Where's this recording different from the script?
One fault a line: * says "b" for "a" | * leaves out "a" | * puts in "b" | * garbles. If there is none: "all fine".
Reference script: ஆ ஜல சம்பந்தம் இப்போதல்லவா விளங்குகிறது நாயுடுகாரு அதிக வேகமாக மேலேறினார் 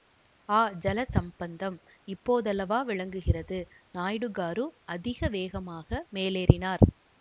all fine